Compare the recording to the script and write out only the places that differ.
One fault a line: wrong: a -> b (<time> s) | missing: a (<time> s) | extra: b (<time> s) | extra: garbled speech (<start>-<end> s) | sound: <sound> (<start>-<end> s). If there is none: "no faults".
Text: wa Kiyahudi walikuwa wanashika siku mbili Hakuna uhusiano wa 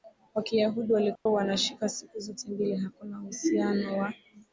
sound: dropout (1.2-1.3 s)
extra: zote (2.2 s)